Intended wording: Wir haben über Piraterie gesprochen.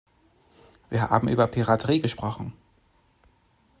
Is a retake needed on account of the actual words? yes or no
no